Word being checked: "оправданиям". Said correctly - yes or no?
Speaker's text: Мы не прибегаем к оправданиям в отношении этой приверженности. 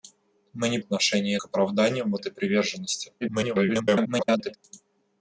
yes